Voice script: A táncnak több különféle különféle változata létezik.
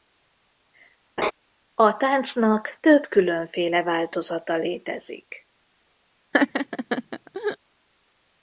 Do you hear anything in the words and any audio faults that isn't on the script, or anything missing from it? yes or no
yes